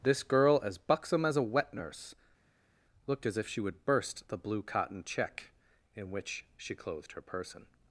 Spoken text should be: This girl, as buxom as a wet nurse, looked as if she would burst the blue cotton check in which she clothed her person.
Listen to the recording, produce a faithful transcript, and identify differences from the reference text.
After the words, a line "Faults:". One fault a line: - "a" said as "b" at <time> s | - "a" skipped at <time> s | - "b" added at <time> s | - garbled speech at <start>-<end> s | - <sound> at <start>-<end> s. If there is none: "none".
This girl, as buxom as a wet nurse, looked as if she would burst the blue cotton check in which she clothed her person.
Faults:
none